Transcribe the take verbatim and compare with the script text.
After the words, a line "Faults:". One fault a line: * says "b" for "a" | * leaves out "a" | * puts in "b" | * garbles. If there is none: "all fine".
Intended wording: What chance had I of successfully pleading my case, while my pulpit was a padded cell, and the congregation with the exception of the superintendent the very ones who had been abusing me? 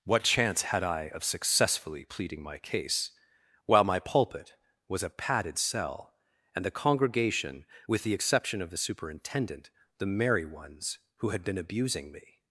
What chance had I of successfully pleading my case, while my pulpit was a padded cell, and the congregation with the exception of the superintendent the merry ones who had been abusing me?
Faults:
* says "merry" for "very"